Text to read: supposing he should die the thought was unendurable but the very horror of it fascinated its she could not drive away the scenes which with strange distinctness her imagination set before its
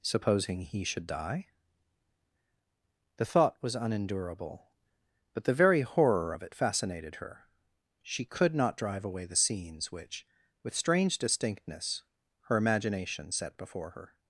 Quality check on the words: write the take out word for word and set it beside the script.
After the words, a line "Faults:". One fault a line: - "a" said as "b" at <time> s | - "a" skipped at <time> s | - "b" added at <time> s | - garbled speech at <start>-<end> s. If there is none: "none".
supposing he should die the thought was unendurable but the very horror of it fascinated her she could not drive away the scenes which with strange distinctness her imagination set before her
Faults:
- "its" said as "her" at 7.1 s
- "its" said as "her" at 13.9 s